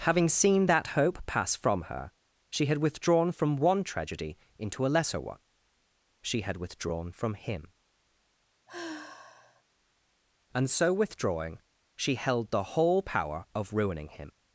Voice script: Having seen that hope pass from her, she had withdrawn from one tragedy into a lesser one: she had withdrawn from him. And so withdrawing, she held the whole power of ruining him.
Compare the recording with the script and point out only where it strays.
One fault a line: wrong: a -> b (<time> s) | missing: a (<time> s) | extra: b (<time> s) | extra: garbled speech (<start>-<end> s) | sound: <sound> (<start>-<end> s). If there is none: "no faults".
sound: sigh (8.7-9.6 s)